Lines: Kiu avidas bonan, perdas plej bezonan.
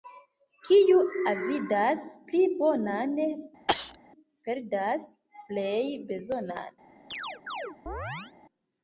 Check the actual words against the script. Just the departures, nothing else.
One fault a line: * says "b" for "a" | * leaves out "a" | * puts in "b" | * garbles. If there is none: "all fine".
* puts in "pli"